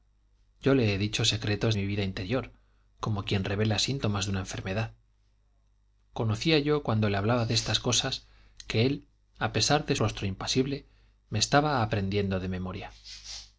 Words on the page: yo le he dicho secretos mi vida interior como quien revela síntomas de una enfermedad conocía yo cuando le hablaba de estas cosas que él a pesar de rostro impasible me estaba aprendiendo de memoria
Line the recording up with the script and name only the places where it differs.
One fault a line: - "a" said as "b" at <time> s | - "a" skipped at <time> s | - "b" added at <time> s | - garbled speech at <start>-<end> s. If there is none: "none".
none